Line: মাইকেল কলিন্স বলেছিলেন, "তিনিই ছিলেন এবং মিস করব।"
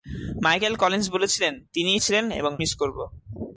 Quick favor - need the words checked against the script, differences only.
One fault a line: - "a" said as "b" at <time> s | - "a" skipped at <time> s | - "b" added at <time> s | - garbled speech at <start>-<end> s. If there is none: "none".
none